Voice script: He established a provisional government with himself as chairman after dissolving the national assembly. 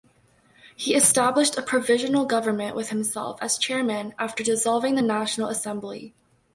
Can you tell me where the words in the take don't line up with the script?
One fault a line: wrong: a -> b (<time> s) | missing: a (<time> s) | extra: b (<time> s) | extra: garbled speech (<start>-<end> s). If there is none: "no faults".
no faults